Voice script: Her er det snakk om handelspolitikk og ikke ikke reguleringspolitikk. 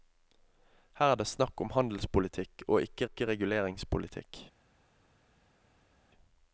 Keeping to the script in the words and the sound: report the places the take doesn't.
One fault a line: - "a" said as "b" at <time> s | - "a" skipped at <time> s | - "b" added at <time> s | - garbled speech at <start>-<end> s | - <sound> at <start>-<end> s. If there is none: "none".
none